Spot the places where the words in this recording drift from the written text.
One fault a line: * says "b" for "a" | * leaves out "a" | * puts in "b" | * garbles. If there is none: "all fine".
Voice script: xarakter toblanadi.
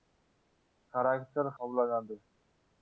all fine